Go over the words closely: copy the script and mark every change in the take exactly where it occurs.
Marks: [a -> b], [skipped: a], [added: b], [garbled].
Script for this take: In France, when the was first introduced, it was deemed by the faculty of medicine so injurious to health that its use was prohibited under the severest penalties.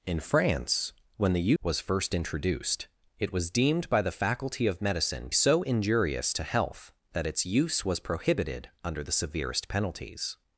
In France, when the was first introduced, it was deemed by the faculty of medicine so injurious to health that its use was prohibited under the severest penalties.